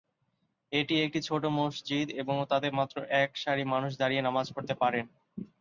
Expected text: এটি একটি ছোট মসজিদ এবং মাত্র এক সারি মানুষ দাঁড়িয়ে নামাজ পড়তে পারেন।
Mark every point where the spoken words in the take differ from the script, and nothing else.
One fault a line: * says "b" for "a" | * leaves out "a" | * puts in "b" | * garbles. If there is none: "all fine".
* puts in "তাতে"